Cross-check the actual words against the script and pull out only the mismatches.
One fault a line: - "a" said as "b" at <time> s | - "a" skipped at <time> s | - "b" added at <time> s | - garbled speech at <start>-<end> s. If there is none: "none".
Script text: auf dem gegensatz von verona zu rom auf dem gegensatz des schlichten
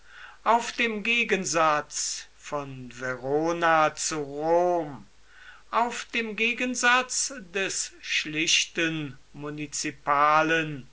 none